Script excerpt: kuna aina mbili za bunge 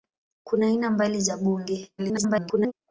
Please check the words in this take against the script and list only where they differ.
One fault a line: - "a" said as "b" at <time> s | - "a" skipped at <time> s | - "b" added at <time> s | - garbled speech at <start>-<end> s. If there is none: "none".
- garbled speech at 2.0-2.7 s